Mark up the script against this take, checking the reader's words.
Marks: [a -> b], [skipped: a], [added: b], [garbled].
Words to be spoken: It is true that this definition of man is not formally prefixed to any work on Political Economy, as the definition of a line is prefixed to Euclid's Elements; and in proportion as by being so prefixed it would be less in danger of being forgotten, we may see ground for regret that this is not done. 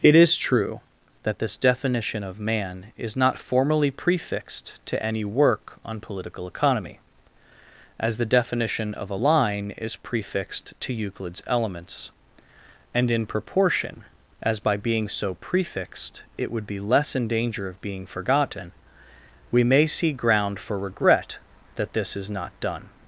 It is true that this definition of man is not formally prefixed to any work on Political Economy, as the definition of a line is prefixed to Euclid's Elements; and in proportion as by being so prefixed it would be less in danger of being forgotten, we may see ground for regret that this is not done.